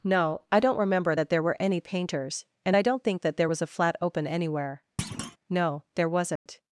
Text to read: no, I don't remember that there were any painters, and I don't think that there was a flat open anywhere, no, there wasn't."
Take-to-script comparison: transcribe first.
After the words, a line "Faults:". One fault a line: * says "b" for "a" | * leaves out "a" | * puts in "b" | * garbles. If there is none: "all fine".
no, I don't remember that there were any painters, and I don't think that there was a flat open anywhere, no, there wasn't."
Faults:
all fine